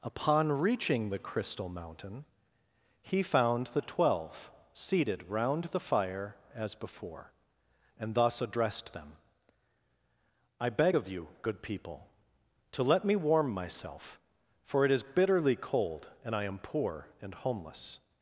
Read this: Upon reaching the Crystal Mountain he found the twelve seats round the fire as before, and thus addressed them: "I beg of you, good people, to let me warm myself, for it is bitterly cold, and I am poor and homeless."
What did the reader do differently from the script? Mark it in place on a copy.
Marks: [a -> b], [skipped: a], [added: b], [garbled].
Upon reaching the Crystal Mountain he found the twelve [seats -> seated] round the fire as before, and thus addressed them: "I beg of you, good people, to let me warm myself, for it is bitterly cold, and I am poor and homeless."